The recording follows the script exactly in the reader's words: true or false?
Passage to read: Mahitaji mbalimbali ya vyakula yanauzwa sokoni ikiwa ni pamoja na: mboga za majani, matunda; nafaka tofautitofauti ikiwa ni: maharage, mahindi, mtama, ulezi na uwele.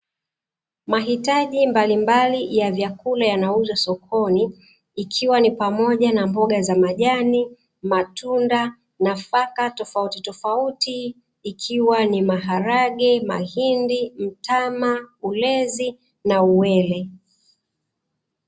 true